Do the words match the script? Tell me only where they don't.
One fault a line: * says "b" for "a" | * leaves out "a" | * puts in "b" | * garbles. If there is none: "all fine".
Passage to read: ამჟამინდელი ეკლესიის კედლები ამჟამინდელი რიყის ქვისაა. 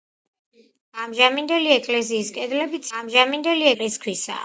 all fine